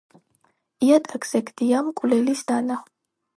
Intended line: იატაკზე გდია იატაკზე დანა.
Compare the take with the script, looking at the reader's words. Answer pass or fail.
fail